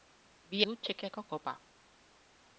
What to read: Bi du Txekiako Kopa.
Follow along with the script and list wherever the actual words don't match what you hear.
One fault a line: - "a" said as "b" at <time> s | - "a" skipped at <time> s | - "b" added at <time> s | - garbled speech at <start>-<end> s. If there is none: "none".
none